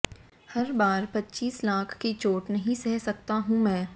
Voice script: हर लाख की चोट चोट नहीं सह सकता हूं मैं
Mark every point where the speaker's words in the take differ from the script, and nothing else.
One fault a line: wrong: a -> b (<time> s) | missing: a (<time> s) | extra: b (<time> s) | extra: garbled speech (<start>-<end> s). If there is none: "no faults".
extra: बार पच्चीस (0.7 s)
missing: चोट (2.5 s)